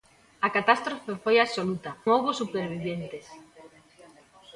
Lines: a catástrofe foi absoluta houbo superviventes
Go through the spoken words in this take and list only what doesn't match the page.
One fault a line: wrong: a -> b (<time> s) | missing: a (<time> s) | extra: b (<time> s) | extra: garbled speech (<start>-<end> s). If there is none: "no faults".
no faults